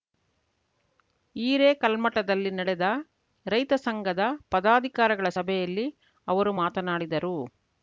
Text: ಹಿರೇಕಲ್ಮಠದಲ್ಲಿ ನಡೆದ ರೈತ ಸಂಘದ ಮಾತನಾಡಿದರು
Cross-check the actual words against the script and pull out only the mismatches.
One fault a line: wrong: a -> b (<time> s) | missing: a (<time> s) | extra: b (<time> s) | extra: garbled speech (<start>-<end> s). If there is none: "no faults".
extra: ಪದಾಧಿಕಾರಿಗಳ ಸಭೆಯಲ್ಲಿ ಅವರು (4.5 s)